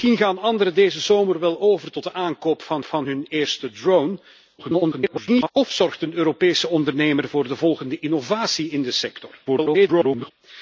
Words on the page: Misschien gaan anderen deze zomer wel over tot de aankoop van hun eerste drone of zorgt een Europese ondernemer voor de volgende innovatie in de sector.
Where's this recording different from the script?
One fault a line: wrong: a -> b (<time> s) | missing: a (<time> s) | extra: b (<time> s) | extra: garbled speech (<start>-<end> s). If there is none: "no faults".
extra: van (2.8 s)
extra: garbled speech (4.6-5.5 s)
extra: garbled speech (9.5-10.3 s)